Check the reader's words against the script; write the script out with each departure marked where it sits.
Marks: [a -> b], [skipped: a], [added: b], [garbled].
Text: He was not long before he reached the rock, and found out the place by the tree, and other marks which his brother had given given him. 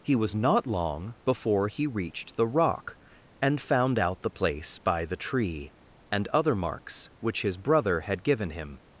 He was not long before he reached the rock, and found out the place by the tree, and other marks which his brother had given [skipped: given] him.